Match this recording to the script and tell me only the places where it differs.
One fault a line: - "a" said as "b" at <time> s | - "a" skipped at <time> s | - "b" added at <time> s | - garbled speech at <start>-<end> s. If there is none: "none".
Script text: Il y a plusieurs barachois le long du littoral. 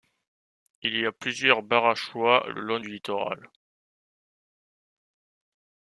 none